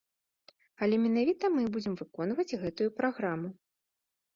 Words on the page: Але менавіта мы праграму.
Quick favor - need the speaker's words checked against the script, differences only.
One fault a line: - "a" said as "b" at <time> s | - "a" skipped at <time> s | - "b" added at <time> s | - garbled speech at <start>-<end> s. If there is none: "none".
- "будзем выконваць гэтую" added at 1.8 s